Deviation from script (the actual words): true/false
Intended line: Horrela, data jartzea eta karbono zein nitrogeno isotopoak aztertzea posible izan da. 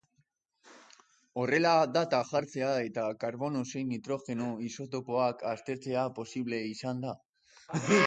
false